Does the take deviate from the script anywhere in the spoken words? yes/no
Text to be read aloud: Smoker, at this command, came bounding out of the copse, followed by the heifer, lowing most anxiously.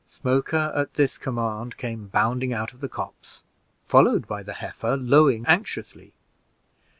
yes